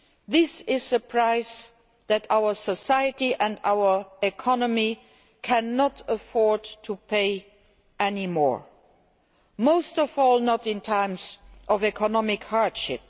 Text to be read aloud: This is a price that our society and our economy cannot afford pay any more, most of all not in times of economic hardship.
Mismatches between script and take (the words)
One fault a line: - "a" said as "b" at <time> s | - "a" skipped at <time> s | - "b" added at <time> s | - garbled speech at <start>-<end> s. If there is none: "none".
- "to" added at 6.8 s